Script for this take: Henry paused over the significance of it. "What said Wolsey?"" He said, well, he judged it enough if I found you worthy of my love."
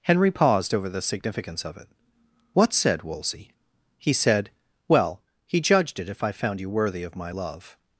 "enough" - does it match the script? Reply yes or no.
no